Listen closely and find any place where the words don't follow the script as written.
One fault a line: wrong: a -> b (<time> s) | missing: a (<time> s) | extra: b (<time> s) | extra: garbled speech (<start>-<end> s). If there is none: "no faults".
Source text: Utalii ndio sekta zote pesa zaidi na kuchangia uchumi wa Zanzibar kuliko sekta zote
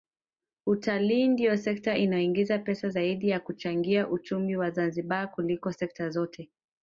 wrong: zote -> inayoingiza (1.9 s)